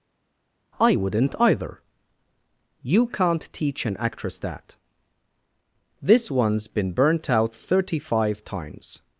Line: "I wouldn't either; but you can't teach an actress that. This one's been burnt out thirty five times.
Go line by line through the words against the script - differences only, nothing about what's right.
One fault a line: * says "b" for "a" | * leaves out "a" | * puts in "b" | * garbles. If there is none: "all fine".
* leaves out "but"